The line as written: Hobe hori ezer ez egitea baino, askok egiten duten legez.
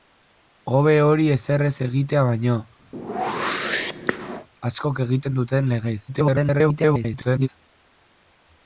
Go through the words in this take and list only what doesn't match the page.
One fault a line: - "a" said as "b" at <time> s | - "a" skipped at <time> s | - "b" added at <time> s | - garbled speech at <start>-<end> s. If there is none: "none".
- garbled speech at 6.1-7.5 s